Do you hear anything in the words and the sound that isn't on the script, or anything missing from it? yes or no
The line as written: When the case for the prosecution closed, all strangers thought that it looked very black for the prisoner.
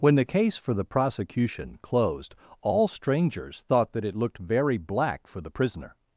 no